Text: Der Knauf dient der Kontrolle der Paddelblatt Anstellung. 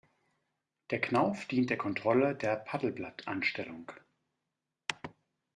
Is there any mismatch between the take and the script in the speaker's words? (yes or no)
no